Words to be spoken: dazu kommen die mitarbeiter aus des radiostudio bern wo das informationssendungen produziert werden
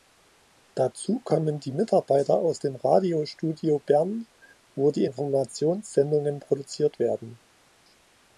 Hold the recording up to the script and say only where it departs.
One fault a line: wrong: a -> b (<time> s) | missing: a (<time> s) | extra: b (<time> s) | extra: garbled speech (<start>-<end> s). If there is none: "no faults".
wrong: des -> dem (2.6 s)
wrong: das -> die (4.9 s)